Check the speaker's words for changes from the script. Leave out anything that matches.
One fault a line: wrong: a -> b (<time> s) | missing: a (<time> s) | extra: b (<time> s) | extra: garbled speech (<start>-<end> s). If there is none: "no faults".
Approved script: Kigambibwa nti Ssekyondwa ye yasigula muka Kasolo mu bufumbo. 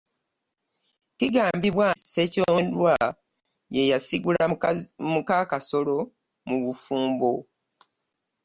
missing: nti (1.9 s)